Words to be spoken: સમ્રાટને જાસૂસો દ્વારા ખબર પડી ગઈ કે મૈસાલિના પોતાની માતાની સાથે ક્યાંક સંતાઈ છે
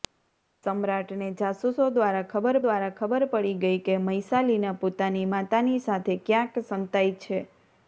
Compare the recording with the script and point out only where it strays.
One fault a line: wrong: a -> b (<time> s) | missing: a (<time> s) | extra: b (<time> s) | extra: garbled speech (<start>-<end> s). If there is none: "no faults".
extra: દ્વારા ખબર (2.6 s)